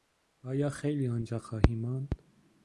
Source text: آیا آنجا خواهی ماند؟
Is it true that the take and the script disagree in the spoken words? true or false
true